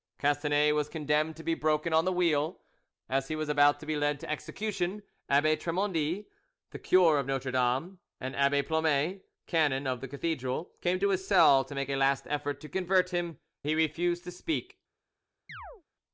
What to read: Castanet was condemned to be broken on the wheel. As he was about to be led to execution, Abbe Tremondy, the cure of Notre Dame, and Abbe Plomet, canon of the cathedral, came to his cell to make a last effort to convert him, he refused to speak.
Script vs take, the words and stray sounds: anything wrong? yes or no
yes